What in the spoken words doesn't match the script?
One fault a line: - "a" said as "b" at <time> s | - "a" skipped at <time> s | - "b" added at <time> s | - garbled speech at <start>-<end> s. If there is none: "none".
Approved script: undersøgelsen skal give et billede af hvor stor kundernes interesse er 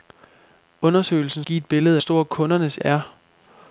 - "skal" skipped at 1.4 s
- "af hvor" skipped at 2.0 s
- "interesse" skipped at 2.8 s